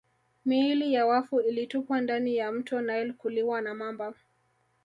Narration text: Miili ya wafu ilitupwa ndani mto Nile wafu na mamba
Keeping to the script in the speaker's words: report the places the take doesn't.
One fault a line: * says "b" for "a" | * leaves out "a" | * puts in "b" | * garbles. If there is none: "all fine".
* puts in "ya"
* says "kuliwa" for "wafu"